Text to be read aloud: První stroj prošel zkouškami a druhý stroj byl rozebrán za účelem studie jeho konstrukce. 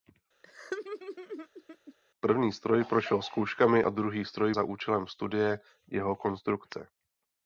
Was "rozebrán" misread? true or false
true